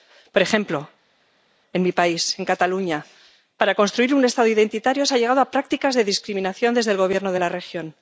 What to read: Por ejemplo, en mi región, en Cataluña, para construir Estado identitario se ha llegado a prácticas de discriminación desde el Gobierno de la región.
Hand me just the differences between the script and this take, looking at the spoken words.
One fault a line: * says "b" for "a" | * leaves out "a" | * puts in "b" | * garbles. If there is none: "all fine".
* says "país" for "región"
* puts in "un"